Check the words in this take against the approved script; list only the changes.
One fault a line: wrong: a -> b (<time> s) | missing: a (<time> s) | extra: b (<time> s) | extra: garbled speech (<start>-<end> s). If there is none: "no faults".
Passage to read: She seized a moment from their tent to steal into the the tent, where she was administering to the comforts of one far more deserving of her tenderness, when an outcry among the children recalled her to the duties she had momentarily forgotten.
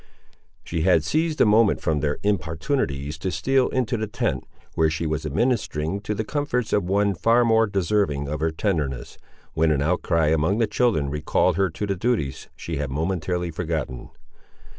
extra: had (0.8 s)
wrong: tent -> importunities (2.2 s)
missing: the (4.1 s)